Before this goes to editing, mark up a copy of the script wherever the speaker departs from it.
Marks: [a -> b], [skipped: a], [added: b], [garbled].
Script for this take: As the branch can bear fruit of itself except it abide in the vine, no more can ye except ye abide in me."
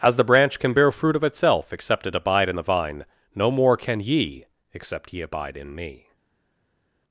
As the branch can bear fruit of itself except it abide in the vine, no more can ye except ye abide in me."